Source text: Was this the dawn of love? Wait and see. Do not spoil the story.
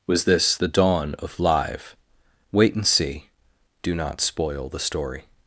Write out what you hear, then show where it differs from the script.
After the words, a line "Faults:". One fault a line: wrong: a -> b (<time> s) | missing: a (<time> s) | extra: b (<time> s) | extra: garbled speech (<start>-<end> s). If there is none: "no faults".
Was this the dawn of live? Wait and see. Do not spoil the story.
Faults:
wrong: love -> live (1.4 s)